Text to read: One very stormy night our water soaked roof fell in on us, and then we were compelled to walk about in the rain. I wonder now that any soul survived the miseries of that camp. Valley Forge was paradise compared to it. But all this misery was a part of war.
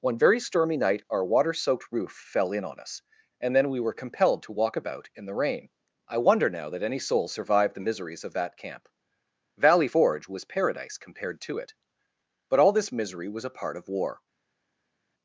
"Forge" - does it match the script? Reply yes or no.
yes